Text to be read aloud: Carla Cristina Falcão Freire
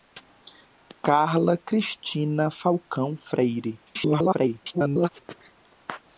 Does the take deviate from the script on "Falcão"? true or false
false